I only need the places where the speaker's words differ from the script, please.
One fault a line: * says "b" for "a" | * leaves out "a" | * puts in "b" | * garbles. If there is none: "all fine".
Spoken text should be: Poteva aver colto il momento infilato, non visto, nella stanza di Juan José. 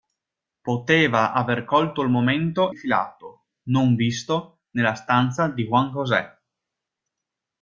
all fine